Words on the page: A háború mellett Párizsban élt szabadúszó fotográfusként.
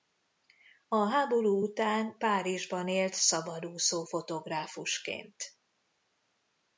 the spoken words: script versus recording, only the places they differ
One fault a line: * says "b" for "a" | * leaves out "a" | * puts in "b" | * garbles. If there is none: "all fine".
* says "után" for "mellett"